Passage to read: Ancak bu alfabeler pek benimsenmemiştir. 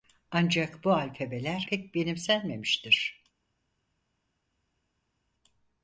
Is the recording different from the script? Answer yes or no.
no